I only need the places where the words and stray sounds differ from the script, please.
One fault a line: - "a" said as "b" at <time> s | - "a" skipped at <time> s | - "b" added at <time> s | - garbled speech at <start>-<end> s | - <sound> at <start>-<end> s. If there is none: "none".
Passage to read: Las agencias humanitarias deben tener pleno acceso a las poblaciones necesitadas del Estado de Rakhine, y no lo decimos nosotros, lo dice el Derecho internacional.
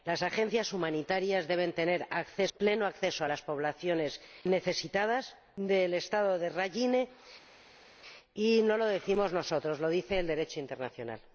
none